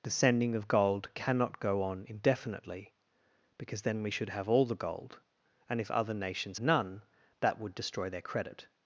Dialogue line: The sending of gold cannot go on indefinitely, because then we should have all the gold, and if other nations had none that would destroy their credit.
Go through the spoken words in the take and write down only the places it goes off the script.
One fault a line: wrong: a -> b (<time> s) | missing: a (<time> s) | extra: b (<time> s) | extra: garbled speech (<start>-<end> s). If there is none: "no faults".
missing: had (6.6 s)